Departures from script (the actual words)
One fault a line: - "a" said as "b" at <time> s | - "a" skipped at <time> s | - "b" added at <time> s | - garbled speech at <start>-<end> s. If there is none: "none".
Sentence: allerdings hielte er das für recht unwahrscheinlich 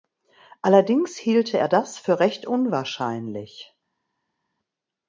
none